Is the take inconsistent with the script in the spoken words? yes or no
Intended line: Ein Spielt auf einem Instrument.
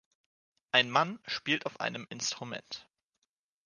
yes